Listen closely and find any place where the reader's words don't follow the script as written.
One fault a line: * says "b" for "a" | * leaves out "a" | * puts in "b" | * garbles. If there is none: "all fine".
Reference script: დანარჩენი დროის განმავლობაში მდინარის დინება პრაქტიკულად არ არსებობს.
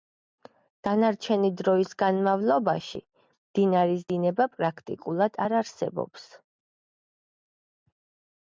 all fine